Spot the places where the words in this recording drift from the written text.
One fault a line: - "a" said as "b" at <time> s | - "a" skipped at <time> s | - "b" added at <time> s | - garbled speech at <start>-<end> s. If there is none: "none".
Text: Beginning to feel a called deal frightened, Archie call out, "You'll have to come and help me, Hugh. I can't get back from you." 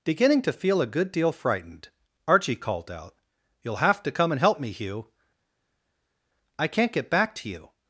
- "called" said as "good" at 0.9 s
- "call" said as "called" at 2.6 s
- "from" said as "to" at 7.4 s